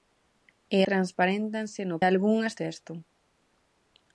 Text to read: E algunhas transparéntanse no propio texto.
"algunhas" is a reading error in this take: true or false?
true